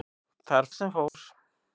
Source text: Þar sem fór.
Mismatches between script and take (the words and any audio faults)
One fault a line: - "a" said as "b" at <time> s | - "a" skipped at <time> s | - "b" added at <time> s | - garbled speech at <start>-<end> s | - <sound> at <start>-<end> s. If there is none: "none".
- dropout at 1.1-1.1 s